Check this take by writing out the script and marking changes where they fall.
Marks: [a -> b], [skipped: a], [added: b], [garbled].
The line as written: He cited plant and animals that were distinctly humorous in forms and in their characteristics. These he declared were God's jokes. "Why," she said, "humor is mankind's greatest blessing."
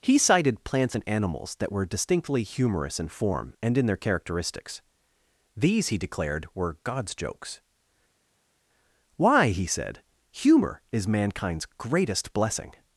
He cited [plant -> plants] and animals that were distinctly humorous in [forms -> form] and in their characteristics. These he declared were God's jokes. "Why," [she -> he] said, "humor is mankind's greatest blessing."